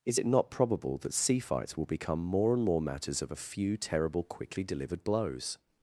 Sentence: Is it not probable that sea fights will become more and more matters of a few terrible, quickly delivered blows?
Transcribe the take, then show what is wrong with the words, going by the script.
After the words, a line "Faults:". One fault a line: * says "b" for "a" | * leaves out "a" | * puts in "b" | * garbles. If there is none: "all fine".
Is it not probable that sea fights will become more and more matters of a few terrible, quickly delivered blows?
Faults:
all fine